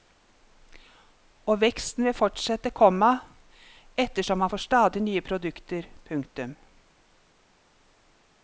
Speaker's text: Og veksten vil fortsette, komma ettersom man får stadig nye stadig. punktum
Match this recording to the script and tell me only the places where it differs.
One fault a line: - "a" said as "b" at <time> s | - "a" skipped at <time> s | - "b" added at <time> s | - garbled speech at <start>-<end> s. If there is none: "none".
- "stadig" said as "produkter" at 5.2 s